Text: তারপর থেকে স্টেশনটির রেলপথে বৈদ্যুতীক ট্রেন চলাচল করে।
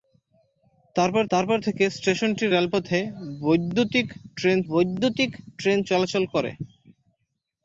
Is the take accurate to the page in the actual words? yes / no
no